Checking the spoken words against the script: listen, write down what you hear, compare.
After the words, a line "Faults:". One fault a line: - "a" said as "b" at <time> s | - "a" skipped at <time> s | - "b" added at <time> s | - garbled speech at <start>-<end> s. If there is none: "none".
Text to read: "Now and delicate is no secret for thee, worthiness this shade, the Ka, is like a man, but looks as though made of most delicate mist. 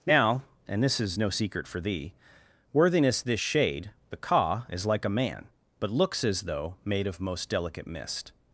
"Now and this is no secret for thee, worthiness this shade, the Ka, is like a man, but looks as though made of most delicate mist.
Faults:
- "delicate" said as "this" at 0.8 s